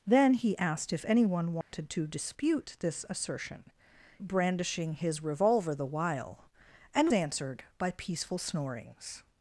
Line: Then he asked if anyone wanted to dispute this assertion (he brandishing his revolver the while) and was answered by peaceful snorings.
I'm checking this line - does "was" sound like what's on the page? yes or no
no